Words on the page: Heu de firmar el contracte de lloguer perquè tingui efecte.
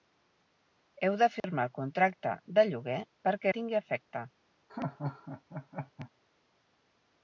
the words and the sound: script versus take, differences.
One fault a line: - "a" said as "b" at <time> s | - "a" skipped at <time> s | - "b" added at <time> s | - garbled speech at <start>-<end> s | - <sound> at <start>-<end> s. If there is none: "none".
- dropout at 1.4-1.4 s
- laugh at 4.7-6.1 s